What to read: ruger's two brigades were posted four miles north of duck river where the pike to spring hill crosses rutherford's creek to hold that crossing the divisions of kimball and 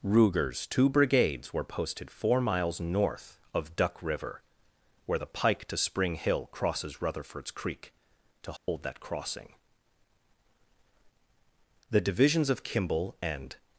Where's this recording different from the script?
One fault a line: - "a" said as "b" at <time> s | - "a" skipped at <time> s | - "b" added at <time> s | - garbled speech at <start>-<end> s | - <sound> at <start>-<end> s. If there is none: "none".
- dropout at 8.6-8.7 s